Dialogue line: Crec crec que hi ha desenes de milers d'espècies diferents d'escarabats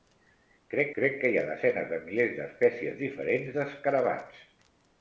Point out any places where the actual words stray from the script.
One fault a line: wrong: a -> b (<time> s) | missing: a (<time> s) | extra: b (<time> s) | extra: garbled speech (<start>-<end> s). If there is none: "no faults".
no faults